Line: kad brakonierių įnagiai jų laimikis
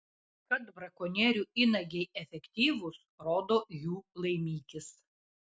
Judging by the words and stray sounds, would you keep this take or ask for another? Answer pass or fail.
fail